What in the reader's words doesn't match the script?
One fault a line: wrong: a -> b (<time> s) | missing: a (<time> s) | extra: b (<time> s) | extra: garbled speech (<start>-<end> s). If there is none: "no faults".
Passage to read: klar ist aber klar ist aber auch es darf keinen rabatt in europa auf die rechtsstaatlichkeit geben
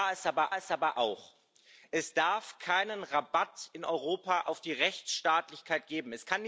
no faults